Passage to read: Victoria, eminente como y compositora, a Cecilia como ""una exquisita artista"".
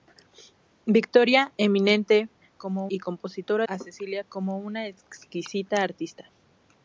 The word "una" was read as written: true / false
true